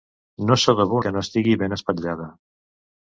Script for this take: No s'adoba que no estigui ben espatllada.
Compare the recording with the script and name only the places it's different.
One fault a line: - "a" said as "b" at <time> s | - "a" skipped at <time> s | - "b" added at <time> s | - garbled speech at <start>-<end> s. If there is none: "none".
none